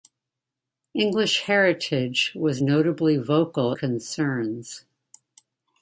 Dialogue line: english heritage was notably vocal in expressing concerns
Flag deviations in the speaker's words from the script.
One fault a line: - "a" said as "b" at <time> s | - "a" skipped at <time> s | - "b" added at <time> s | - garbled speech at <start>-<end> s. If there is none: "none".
- "in expressing" skipped at 3.7 s